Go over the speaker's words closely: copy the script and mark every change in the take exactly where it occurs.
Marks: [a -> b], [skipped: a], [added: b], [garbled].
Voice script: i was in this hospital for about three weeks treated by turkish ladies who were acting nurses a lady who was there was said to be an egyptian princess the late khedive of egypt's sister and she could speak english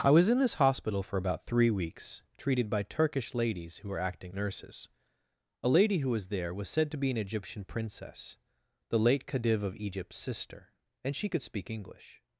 i was in this hospital for about three weeks treated by turkish ladies who were acting nurses a lady who was there was said to be an egyptian princess the late khedive of egypt's sister and she could speak english